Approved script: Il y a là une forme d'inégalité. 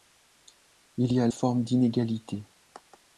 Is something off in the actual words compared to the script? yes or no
yes